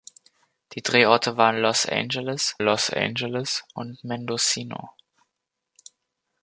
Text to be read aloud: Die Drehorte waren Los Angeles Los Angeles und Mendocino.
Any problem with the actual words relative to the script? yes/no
no